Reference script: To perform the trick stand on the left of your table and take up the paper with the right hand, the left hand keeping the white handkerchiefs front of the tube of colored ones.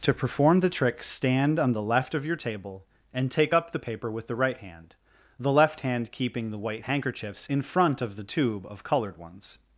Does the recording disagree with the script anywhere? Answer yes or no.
yes